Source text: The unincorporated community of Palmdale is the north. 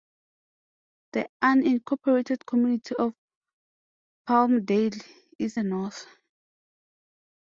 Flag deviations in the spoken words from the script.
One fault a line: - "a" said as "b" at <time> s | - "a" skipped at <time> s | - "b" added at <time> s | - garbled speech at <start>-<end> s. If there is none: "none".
none